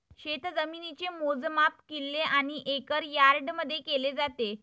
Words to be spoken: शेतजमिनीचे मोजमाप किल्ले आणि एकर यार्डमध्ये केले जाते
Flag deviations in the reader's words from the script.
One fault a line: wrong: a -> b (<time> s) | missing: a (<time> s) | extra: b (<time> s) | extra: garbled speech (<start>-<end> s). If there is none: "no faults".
no faults